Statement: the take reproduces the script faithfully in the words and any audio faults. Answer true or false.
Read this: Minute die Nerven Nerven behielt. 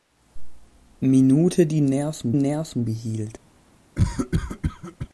false